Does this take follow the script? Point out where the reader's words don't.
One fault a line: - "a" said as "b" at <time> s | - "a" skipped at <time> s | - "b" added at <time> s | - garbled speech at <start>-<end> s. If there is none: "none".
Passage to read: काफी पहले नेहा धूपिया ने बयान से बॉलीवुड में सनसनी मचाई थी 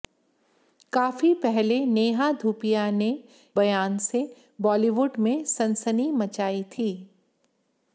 none